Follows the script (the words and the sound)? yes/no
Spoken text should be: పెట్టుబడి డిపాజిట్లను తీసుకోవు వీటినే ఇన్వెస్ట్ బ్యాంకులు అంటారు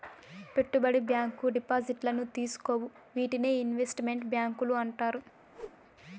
no